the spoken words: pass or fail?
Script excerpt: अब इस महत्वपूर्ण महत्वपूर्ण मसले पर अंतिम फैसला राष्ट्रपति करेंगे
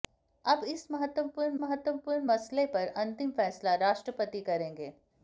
pass